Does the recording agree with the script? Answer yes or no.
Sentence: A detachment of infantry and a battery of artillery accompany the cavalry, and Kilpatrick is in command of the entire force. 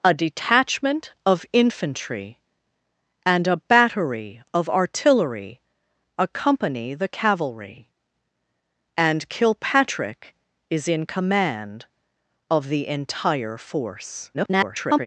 no